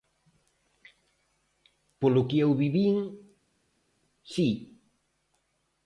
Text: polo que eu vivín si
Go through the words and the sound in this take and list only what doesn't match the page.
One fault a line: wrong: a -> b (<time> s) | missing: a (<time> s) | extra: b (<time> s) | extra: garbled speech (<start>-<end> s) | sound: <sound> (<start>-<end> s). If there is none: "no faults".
no faults